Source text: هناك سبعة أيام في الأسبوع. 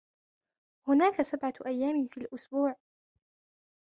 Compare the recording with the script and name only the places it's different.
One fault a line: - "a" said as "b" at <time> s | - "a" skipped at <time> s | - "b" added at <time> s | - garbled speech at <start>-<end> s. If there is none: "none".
none